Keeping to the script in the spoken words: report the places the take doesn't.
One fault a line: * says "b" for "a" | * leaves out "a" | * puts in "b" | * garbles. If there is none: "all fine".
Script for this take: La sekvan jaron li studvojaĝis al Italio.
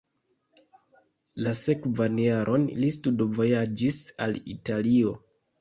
all fine